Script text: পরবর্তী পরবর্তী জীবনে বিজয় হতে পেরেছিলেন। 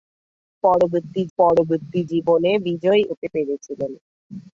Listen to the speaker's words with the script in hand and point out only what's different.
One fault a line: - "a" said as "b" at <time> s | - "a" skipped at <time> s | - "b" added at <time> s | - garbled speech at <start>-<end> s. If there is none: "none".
none